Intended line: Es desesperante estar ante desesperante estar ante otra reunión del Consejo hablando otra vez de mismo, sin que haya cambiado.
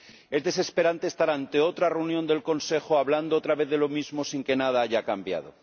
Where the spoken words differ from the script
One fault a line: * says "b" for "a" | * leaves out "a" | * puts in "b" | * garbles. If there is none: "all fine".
* leaves out "desesperante estar ante"
* puts in "lo"
* puts in "nada"